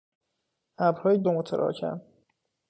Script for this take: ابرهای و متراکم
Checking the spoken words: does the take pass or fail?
pass